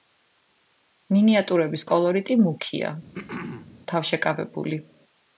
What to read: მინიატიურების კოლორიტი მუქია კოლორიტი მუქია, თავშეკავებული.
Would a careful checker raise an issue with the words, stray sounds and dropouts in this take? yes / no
yes